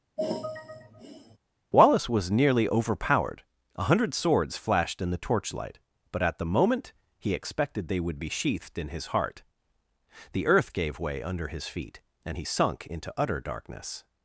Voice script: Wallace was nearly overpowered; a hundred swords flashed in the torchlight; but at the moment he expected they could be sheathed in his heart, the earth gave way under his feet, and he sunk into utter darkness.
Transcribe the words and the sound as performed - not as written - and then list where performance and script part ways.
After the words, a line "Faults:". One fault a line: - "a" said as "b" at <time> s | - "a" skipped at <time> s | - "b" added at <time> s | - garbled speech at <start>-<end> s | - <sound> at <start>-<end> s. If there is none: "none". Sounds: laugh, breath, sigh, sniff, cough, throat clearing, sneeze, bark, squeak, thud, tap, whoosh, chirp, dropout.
Wallace was nearly overpowered; a hundred swords flashed in the torchlight; but at the moment he expected they would be sheathed in his heart, the earth gave way under his feet, and he sunk into utter darkness.
Faults:
- sigh at 0.2-1.4 s
- "could" said as "would" at 8.0 s